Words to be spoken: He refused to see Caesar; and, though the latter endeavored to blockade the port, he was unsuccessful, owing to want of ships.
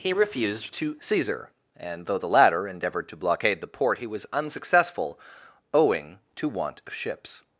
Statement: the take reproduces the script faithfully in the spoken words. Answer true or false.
false